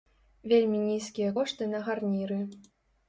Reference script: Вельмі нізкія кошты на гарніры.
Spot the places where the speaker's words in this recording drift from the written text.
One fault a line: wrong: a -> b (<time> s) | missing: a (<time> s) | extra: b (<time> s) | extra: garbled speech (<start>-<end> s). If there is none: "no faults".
no faults